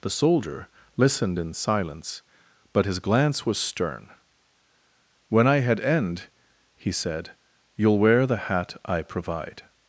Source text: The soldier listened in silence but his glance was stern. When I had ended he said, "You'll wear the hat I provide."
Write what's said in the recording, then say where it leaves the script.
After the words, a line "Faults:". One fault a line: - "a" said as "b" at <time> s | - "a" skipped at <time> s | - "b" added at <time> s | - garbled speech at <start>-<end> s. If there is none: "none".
The soldier listened in silence but his glance was stern. When I had end he said, "You'll wear the hat I provide."
Faults:
- "ended" said as "end" at 5.8 s